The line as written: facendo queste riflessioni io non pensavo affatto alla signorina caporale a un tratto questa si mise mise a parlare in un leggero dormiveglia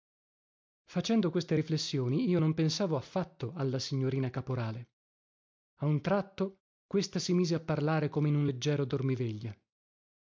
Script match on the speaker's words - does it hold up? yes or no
no